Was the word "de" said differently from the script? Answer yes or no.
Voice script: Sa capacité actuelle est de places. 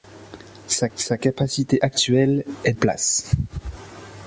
yes